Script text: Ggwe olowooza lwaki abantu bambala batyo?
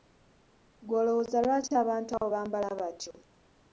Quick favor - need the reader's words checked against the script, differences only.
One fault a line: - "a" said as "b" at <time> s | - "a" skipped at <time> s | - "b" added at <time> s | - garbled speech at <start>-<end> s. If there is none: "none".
- "abo" added at 2.2 s